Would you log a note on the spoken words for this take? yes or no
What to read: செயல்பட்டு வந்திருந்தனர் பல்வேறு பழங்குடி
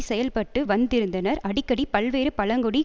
yes